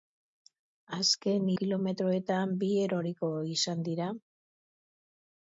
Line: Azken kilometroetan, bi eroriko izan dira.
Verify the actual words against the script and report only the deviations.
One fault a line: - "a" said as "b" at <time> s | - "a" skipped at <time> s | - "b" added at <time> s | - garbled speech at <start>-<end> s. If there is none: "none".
none